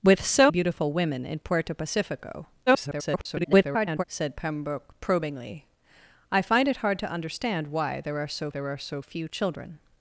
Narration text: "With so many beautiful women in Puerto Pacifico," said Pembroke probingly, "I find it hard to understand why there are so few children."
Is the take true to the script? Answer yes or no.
no